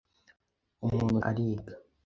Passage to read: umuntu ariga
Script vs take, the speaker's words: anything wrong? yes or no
no